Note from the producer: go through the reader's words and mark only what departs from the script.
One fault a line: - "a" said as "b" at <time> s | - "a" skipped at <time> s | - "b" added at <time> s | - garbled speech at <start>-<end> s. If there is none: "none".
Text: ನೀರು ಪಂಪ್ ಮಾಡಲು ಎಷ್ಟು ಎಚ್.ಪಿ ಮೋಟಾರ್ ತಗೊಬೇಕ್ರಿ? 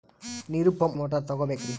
- "ಮಾಡಲು ಎಷ್ಟು ಎಚ್.ಪಿ" skipped at 1.0 s